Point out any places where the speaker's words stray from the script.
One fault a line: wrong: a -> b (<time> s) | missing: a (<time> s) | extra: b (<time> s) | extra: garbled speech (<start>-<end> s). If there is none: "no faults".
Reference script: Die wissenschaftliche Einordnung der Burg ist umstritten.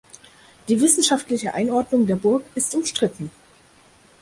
no faults